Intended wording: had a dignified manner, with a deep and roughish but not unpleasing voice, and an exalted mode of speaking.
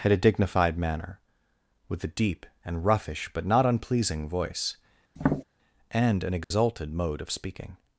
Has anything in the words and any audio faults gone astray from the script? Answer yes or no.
yes